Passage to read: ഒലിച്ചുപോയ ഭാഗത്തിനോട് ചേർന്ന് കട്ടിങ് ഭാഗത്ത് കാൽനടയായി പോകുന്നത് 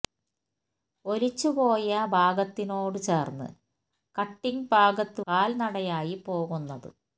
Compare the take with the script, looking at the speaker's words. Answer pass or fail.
pass